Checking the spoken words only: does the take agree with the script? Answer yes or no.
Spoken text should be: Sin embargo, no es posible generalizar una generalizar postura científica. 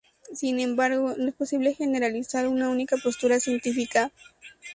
no